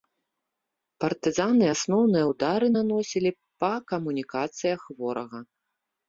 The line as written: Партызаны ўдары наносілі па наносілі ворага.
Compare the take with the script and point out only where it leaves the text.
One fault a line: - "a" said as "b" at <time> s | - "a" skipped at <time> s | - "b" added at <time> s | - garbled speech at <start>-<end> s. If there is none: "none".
- "асноўныя" added at 1.7 s
- "наносілі" said as "камунікацыях" at 4.0 s